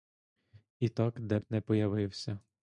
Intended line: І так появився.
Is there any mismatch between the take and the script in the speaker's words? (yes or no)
yes